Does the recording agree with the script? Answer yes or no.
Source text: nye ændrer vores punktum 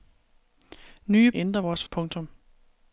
yes